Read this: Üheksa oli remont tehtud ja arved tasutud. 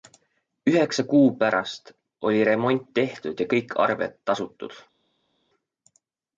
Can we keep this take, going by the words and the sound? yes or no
no